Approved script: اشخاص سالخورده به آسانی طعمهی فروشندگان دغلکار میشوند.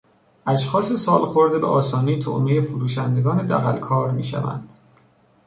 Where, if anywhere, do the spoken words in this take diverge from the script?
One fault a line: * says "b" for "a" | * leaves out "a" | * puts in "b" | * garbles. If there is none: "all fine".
all fine